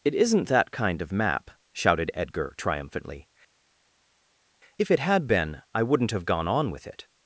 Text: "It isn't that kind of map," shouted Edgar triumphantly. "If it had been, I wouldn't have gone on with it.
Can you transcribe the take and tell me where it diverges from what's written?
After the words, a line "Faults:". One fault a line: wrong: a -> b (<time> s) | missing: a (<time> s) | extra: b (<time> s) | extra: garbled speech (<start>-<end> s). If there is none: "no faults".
"It isn't that kind of map," shouted Edgar triumphantly. "If it had been, I wouldn't have gone on with it.
Faults:
no faults